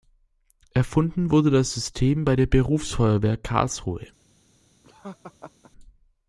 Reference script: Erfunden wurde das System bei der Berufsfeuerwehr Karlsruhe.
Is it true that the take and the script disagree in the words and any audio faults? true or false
true